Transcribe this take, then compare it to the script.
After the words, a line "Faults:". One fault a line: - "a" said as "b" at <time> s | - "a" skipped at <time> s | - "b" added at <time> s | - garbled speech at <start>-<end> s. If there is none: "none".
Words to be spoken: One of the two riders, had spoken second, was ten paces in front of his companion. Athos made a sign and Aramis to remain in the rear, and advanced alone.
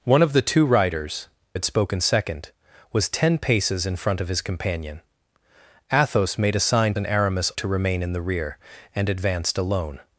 One of the two riders, had spoken second, was ten paces in front of his companion. Athos made a sign and Aramis to remain in the rear, and advanced alone.
Faults:
none